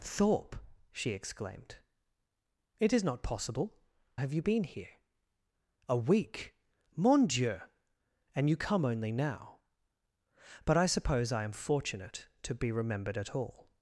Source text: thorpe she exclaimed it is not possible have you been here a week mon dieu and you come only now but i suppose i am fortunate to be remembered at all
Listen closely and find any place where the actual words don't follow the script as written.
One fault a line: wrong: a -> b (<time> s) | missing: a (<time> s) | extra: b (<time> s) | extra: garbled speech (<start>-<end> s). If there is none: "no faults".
no faults